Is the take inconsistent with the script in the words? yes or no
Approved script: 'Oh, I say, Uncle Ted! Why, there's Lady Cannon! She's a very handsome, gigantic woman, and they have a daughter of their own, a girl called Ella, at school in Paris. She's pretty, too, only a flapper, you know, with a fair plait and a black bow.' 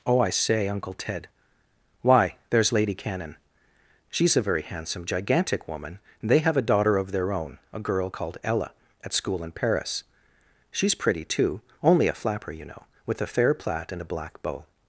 no